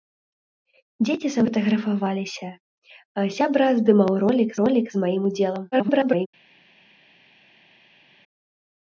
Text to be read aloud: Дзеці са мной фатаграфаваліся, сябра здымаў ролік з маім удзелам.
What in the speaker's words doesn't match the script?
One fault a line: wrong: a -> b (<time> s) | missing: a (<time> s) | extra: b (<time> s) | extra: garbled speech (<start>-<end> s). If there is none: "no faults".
missing: мной (1.4 s)
extra: ролік (4.6 s)
extra: garbled speech (5.7-6.3 s)